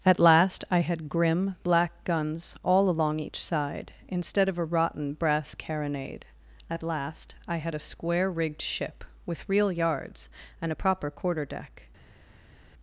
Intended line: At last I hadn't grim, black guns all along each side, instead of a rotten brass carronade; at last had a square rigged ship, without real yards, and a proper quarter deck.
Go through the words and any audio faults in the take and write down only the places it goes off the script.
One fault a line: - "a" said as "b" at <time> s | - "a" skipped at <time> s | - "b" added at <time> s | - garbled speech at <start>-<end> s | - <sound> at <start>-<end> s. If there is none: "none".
- "hadn't" said as "had" at 0.8 s
- "I" added at 7.5 s
- "without" said as "with" at 9.3 s